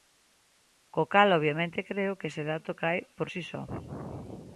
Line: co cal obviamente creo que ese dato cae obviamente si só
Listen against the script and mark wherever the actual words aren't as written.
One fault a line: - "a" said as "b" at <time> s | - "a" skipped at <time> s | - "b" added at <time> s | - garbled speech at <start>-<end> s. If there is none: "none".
- "obviamente" said as "por" at 3.2 s